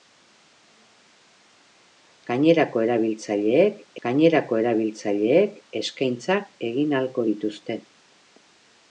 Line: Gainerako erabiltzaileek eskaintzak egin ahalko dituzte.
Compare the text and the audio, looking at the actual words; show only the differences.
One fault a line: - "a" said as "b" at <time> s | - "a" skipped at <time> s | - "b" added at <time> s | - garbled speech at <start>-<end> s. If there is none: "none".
- "gainerako erabiltzaileek" added at 4.1 s